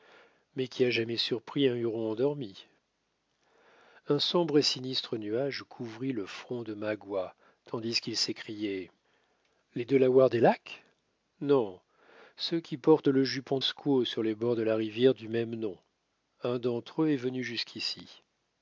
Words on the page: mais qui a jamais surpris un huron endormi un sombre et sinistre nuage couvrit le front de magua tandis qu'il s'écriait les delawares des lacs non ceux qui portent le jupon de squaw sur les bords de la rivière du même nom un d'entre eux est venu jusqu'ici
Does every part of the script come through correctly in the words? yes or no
no